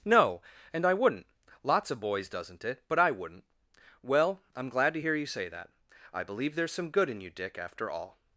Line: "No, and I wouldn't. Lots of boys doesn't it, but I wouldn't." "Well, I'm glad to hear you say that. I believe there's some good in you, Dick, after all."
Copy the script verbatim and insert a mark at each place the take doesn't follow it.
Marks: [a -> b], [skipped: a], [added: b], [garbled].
"No, and I wouldn't. Lots of boys doesn't it, but I wouldn't." "Well, I'm glad to hear you say that. I believe there's some good in you, Dick, after all."